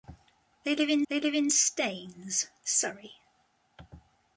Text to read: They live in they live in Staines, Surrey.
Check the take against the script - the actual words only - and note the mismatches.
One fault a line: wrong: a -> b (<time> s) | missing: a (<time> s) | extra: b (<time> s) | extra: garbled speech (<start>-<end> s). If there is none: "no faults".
no faults